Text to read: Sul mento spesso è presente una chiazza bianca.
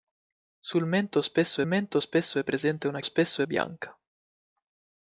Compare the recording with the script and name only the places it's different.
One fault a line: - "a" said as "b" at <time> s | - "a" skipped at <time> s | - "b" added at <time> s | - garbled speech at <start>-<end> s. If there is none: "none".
- "mento spesso" added at 1.7 s
- "chiazza" said as "spesso" at 3.0 s